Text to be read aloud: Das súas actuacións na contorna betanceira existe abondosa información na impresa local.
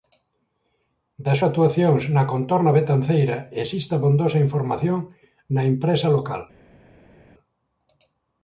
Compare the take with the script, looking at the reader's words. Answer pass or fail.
fail